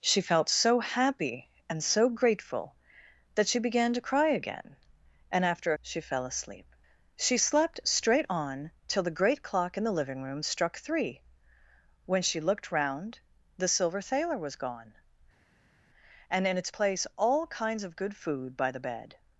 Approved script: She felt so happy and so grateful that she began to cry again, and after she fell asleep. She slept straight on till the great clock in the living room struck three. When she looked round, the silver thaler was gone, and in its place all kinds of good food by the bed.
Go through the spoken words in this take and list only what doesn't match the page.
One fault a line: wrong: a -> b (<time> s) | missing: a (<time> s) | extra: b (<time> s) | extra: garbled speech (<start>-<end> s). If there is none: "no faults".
no faults